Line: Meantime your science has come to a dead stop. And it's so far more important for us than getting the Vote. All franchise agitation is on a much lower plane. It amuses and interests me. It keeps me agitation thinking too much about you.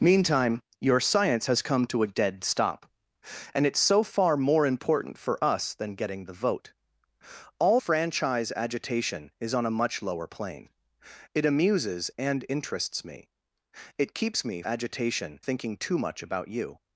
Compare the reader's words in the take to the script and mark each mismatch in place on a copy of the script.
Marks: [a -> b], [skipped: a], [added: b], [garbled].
Meantime your science has come to a dead stop. And it's so far more important for us than getting the Vote. All franchise agitation is on a much lower plane. It amuses and interests me. It keeps me agitation thinking too much about you.